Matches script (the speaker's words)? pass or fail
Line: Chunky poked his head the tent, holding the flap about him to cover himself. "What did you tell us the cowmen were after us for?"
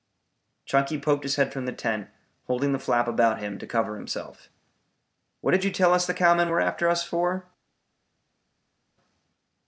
fail